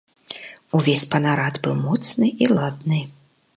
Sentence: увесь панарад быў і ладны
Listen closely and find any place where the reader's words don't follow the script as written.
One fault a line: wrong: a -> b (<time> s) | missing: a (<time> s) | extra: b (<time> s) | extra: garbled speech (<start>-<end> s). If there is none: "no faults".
extra: моцны (1.9 s)